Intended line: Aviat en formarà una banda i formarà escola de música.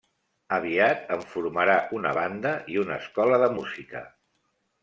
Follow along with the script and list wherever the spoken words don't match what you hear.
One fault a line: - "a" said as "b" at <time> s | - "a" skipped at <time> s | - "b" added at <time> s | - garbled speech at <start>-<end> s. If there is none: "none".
- "formarà" said as "una" at 2.9 s